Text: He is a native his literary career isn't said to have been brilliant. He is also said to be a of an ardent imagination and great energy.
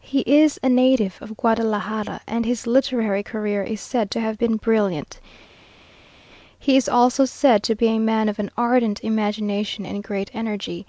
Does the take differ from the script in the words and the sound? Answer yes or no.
yes